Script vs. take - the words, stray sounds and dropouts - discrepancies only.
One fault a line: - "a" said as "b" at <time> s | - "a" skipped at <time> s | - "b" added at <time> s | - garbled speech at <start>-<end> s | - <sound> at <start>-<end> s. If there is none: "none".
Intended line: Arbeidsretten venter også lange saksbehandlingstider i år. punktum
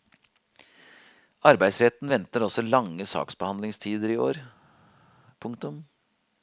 none